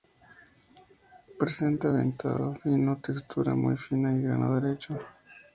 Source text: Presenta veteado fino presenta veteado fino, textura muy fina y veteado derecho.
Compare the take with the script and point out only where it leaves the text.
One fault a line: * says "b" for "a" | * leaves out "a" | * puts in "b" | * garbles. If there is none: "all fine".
* leaves out "presenta veteado fino"
* says "grano" for "veteado"